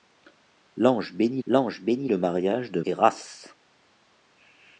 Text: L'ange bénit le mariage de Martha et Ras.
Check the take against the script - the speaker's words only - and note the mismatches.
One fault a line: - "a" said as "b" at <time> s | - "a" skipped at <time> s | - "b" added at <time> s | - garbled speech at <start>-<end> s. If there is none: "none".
- "l'ange bénit" added at 1.5 s
- "Martha" skipped at 2.8 s